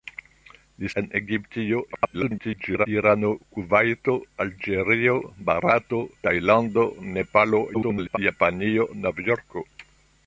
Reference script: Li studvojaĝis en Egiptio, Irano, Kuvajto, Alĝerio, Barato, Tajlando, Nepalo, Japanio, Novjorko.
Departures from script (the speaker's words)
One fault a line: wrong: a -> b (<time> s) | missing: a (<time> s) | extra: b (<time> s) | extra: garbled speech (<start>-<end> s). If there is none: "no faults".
missing: studvojaĝis (0.9 s)
extra: garbled speech (1.9-2.9 s)
extra: garbled speech (7.7-8.2 s)